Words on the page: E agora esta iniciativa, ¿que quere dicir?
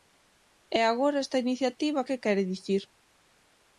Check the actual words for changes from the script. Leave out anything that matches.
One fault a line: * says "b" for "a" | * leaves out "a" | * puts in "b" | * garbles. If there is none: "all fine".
all fine